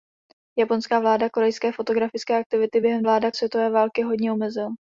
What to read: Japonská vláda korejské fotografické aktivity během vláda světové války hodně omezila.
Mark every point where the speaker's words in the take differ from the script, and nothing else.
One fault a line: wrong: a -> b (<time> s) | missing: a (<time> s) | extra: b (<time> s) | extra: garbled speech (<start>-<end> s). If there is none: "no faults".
no faults